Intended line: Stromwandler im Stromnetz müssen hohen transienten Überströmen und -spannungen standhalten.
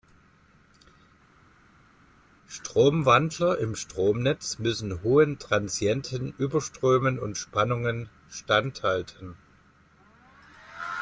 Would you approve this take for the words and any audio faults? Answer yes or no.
yes